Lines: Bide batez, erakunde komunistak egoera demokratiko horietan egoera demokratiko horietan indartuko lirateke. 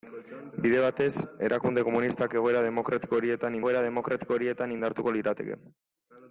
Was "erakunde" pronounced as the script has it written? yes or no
yes